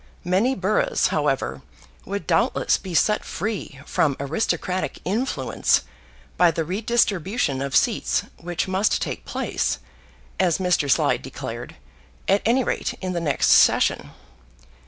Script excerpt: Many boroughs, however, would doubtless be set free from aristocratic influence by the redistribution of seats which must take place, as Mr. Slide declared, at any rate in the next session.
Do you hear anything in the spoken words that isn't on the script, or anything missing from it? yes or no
no